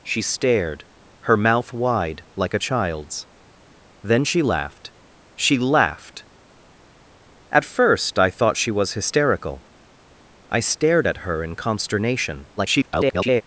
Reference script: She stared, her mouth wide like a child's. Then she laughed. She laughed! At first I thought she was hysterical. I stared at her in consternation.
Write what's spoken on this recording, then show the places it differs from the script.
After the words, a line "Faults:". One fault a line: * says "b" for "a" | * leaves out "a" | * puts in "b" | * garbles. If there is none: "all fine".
She stared, her mouth wide like a child's. Then she laughed. She laughed! At first I thought she was hysterical. I stared at her in consternation. [garbled]
Faults:
* garbles